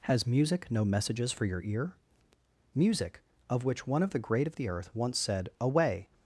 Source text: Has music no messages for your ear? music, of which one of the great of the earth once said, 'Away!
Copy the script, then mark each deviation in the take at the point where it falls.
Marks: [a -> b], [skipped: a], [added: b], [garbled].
Has music no messages for your ear? music, of which one of the great of the earth once said, 'Away!